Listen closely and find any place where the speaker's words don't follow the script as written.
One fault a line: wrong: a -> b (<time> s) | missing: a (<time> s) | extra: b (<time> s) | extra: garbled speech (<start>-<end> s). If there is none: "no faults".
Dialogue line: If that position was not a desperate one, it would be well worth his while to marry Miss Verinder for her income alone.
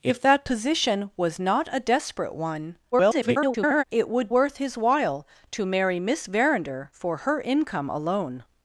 extra: garbled speech (2.9-3.8 s)
missing: be well (4.3 s)